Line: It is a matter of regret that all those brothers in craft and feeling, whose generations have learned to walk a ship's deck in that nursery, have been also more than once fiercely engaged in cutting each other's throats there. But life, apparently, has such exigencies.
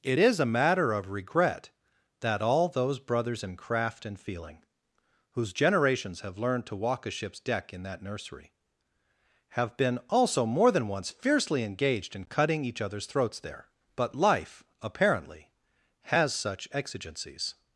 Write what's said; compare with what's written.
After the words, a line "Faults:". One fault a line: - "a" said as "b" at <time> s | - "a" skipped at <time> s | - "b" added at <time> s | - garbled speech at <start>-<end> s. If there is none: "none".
It is a matter of regret that all those brothers in craft and feeling, whose generations have learned to walk a ship's deck in that nursery, have been also more than once fiercely engaged in cutting each other's throats there. But life, apparently, has such exigencies.
Faults:
none